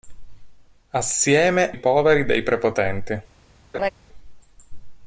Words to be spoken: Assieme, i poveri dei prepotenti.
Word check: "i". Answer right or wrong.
right